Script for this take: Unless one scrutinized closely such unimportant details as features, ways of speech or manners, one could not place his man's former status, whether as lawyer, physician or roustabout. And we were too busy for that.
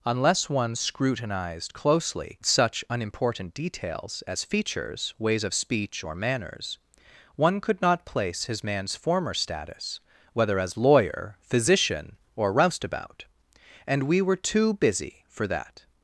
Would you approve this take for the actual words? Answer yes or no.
yes